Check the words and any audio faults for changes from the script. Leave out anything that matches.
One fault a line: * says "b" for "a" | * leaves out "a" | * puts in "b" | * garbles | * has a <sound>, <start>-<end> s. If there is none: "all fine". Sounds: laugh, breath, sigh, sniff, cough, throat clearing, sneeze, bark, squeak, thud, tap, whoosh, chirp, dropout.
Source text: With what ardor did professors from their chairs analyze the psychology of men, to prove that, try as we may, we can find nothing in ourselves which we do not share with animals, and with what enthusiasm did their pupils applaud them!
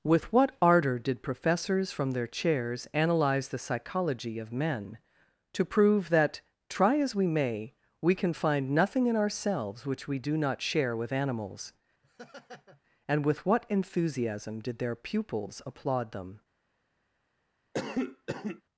* has a laugh, 12.0-12.8 s
* has a cough, 17.7-18.6 s